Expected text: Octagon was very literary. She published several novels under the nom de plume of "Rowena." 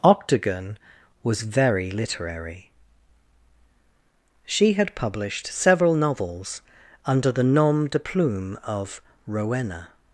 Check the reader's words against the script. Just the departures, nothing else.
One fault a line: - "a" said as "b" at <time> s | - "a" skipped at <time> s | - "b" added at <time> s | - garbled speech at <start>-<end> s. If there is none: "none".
- "had" added at 4.7 s